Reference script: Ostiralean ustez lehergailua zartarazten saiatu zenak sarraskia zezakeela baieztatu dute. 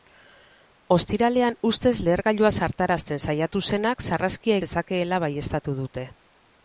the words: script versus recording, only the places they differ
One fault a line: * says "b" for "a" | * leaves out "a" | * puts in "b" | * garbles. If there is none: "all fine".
all fine